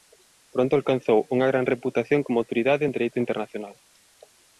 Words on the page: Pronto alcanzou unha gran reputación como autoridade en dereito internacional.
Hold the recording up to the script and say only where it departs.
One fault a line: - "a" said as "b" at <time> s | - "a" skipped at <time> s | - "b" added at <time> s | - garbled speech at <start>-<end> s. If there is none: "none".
none